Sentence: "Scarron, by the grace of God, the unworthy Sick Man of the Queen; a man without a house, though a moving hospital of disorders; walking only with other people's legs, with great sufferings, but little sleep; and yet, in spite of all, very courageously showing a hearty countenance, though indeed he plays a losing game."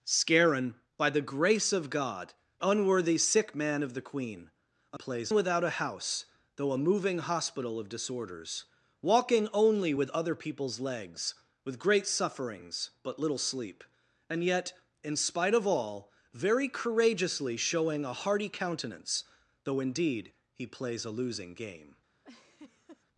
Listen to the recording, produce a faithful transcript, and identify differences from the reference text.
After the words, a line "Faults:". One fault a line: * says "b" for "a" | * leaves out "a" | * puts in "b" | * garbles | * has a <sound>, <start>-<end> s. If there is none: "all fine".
"Scarron, by the grace of God, unworthy Sick Man of the Queen; a plays without a house, though a moving hospital of disorders; walking only with other people's legs, with great sufferings, but little sleep; and yet, in spite of all, very courageously showing a hearty countenance, though indeed he plays a losing game."
Faults:
* leaves out "the"
* says "plays" for "man"
* has a laugh, 22.2-23.0 s